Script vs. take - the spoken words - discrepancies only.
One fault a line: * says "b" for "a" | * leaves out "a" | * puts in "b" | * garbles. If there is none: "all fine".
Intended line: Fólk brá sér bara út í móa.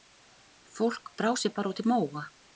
all fine